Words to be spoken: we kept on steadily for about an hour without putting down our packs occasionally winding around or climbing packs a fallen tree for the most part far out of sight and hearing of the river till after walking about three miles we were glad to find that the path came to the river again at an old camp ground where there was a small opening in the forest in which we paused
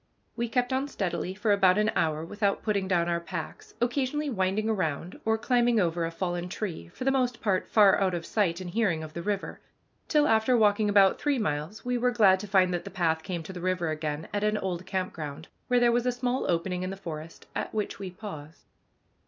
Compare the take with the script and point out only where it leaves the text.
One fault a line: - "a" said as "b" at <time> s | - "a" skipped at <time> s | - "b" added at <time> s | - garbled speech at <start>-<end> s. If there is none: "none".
- "packs" said as "over" at 5.8 s
- "in" said as "at" at 17.5 s